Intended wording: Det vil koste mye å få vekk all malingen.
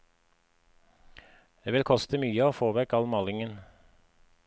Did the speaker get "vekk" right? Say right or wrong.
right